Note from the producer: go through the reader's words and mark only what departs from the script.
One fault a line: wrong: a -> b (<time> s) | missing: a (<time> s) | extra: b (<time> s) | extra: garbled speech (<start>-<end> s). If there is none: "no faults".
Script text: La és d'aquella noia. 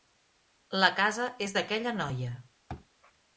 extra: casa (1.0 s)